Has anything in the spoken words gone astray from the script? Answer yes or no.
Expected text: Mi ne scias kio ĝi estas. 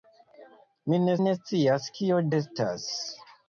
yes